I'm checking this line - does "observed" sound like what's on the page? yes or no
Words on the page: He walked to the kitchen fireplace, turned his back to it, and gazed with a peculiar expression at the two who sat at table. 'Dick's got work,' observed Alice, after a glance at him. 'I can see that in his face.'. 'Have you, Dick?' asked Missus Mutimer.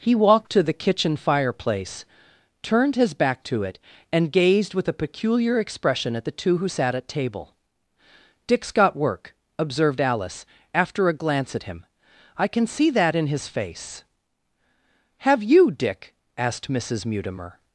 yes